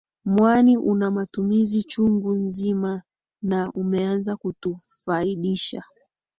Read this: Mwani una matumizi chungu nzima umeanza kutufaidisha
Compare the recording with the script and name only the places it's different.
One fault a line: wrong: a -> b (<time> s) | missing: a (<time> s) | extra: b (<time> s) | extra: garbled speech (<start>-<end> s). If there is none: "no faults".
extra: na (3.4 s)